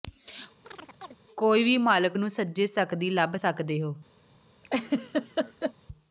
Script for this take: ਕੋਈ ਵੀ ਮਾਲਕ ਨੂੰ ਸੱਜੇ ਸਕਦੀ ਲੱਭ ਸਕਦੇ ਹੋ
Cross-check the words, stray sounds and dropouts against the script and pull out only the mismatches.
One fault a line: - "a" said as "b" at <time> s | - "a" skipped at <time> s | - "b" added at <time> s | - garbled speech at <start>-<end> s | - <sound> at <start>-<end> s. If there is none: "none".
- chirp at 0.6-1.2 s
- laugh at 4.6-5.7 s